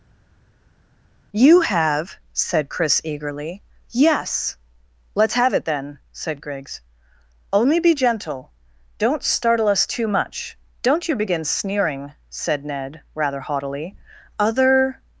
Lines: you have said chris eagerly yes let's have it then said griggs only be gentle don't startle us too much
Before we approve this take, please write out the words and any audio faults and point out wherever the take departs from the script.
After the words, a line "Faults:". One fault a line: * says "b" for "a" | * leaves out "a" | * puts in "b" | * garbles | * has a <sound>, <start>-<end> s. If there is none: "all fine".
you have said chris eagerly yes let's have it then said griggs only be gentle don't startle us too much don't you begin sneering said ned rather haughtily other
Faults:
* puts in "don't you begin sneering said ned rather haughtily other"